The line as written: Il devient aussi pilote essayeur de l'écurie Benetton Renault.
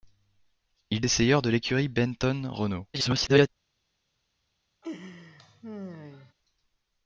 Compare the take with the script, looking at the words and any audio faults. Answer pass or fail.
fail